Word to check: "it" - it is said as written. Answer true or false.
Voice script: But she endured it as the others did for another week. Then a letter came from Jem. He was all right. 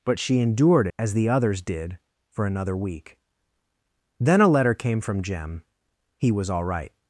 false